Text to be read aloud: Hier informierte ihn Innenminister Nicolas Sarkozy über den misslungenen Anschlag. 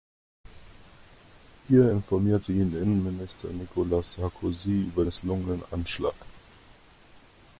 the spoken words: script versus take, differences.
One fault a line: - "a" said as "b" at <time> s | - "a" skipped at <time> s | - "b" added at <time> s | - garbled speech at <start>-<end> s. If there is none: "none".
- "den" skipped at 5.0 s